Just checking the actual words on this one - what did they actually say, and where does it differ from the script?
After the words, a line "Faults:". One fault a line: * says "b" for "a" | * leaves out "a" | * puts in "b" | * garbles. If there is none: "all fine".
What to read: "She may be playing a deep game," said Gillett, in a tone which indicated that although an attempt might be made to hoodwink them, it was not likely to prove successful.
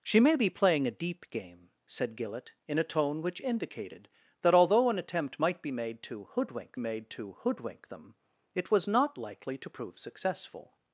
"She may be playing a deep game," said Gillett, in a tone which indicated that although an attempt might be made to hoodwink made to hoodwink them, it was not likely to prove successful.
Faults:
* puts in "made to hoodwink"